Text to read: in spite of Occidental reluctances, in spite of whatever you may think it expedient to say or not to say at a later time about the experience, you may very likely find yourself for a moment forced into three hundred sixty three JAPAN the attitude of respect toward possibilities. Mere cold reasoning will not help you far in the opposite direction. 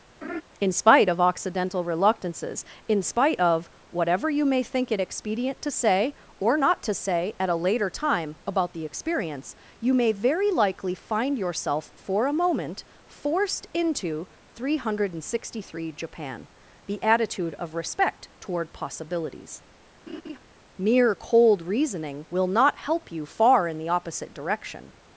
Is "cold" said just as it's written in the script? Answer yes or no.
yes